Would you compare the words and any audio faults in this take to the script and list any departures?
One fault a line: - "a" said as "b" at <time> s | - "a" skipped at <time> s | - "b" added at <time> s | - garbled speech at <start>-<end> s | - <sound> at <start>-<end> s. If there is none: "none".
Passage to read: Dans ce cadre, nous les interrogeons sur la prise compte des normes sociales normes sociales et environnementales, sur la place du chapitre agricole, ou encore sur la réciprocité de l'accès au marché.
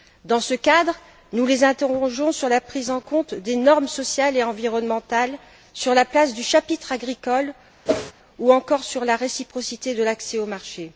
- "en" added at 2.9 s
- "normes sociales" skipped at 4.4 s
- whoosh at 7.9-8.1 s